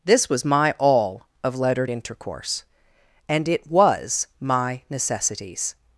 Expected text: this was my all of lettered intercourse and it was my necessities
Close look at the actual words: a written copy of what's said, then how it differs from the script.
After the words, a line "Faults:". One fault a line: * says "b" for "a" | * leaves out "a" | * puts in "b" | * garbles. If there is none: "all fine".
this was my all of lettered intercourse and it was my necessities
Faults:
all fine